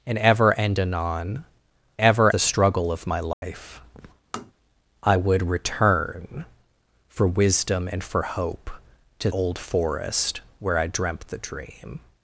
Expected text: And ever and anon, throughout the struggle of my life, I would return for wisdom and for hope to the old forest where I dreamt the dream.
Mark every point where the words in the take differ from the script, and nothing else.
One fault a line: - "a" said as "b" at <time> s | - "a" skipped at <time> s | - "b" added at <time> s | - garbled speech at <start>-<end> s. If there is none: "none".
- "throughout" said as "ever" at 2.0 s
- "the" skipped at 9.3 s